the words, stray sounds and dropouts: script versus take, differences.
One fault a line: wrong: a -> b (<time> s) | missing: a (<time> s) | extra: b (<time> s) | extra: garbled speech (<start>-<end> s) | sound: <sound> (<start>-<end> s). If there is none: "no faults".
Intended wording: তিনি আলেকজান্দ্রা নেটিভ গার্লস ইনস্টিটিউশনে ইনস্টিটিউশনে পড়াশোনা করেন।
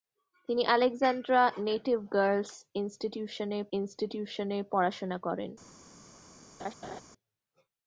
sound: laugh (6.6-7.0 s)